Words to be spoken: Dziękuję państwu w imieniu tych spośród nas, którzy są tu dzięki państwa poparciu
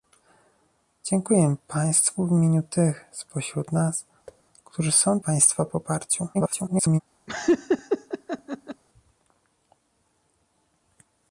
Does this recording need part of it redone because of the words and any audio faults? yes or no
yes